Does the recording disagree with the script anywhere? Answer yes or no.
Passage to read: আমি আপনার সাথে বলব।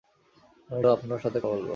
no